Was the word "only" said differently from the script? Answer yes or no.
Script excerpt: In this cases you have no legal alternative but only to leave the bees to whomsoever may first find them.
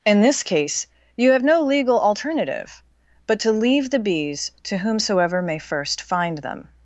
yes